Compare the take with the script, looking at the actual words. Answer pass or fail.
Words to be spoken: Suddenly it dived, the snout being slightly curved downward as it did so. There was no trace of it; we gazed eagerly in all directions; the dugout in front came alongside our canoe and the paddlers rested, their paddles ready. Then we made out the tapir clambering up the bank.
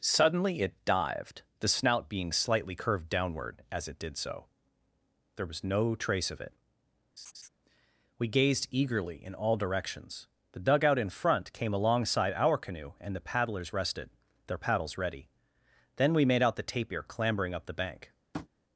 pass